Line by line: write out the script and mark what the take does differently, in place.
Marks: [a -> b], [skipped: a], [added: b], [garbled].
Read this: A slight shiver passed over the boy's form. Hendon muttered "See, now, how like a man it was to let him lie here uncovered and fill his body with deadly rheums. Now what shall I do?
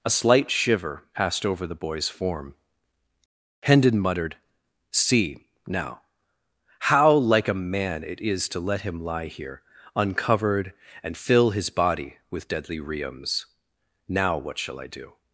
A slight shiver passed over the boy's form. Hendon muttered "See, now, how like a man it [was -> is] to let him lie here uncovered and fill his body with deadly rheums. Now what shall I do?